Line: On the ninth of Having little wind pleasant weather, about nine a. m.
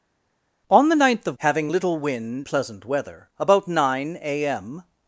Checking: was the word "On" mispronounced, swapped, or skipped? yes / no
no